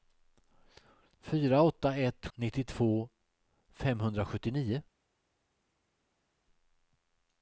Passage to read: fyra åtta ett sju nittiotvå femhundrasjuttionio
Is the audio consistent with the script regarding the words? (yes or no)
no